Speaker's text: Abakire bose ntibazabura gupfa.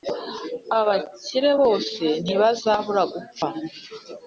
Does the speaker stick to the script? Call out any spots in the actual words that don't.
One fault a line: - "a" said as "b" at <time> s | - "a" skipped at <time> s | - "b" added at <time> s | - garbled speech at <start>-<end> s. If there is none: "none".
none